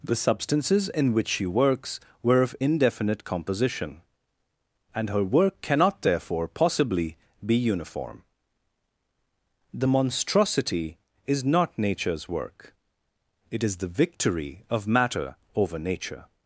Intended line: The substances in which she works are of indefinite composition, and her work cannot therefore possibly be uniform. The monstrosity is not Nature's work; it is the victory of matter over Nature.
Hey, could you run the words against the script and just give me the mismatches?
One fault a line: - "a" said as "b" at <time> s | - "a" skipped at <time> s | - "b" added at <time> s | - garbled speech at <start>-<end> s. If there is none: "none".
- "are" said as "were" at 2.2 s